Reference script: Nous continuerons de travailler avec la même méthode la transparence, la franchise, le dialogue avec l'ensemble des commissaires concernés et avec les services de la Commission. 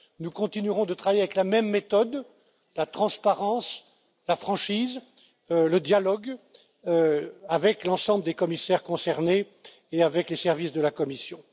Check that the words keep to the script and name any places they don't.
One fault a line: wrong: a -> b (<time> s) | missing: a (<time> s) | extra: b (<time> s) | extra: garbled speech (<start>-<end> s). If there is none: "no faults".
no faults